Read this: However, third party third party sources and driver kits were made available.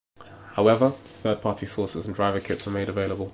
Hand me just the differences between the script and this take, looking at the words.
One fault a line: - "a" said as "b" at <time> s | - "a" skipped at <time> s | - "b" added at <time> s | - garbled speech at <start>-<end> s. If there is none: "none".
- "third party" skipped at 1.7 s